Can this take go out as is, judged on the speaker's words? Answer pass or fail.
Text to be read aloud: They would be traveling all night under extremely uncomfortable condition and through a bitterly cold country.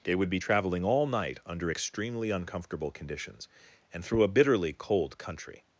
fail